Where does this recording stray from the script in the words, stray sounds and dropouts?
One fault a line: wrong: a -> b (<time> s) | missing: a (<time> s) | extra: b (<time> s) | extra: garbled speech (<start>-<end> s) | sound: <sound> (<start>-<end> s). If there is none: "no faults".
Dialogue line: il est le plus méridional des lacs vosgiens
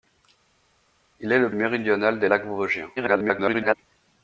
missing: plus (1.5 s)
extra: garbled speech (3.0-3.7 s)